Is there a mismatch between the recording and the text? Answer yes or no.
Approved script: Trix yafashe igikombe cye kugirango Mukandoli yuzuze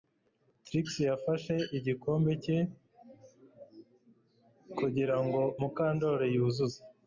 no